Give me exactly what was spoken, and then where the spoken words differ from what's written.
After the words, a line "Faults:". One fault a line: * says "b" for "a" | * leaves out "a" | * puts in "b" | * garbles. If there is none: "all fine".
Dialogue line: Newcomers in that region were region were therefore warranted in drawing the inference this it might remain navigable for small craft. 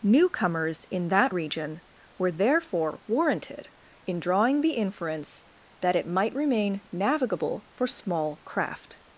Newcomers in that region were therefore warranted in drawing the inference that it might remain navigable for small craft.
Faults:
* leaves out "region were"
* says "that" for "this"